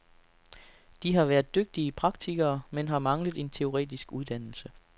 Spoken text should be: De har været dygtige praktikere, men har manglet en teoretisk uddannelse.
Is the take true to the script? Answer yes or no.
yes